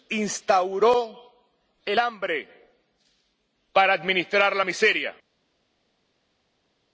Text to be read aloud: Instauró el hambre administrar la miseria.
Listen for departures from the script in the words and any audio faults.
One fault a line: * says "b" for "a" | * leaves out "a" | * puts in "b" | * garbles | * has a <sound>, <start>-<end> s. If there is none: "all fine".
* puts in "para"